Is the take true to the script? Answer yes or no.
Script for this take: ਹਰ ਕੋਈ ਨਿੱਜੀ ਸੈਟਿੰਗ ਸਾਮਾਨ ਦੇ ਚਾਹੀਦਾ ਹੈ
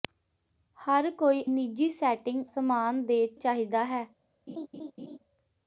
yes